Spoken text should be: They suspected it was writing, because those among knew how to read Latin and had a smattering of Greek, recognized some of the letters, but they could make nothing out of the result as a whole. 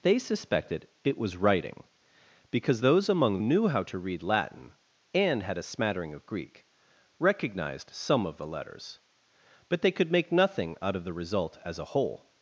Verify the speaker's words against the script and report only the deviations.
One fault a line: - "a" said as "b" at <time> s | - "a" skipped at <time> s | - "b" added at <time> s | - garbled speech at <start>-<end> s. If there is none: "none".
none